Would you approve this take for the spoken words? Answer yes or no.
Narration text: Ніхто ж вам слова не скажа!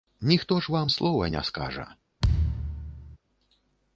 yes